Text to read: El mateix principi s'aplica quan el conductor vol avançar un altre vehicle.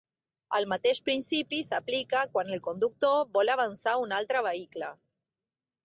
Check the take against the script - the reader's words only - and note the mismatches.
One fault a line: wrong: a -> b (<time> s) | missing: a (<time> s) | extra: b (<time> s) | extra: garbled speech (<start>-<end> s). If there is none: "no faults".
no faults